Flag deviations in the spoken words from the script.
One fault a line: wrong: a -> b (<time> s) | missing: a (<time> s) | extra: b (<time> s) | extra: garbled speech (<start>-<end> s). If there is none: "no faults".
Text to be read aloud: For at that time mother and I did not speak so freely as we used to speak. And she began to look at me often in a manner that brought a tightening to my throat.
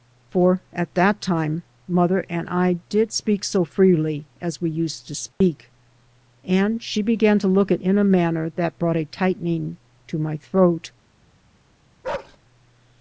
missing: not (3.1 s)
missing: me often (7.8 s)